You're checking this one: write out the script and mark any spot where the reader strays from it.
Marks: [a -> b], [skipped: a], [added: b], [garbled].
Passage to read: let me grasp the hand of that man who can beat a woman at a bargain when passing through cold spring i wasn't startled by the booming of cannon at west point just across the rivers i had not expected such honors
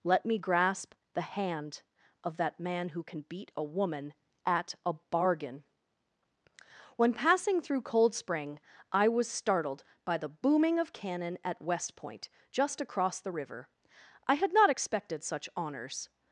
let me grasp the hand of that man who can beat a woman at a bargain when passing through cold spring i [wasn't -> was] startled by the booming of cannon at west point just across the [rivers -> river] i had not expected such honors